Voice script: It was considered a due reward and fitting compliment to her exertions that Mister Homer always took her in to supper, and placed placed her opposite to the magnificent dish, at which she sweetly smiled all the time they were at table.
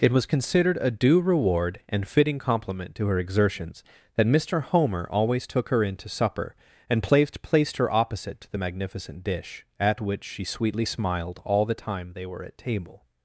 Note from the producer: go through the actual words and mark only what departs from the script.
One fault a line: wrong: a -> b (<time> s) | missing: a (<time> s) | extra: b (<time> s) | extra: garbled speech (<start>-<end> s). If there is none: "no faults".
no faults